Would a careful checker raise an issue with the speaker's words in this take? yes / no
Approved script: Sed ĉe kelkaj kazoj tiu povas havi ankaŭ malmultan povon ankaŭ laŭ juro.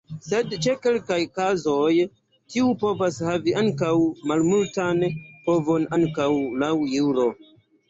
no